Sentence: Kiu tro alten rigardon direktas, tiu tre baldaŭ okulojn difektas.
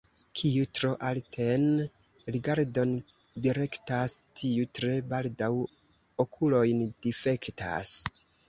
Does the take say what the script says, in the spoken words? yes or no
yes